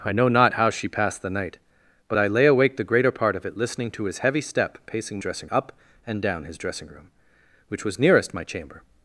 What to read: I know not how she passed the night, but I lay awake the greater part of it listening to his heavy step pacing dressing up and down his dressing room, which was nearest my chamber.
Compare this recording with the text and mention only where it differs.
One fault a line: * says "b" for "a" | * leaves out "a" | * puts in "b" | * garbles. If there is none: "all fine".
all fine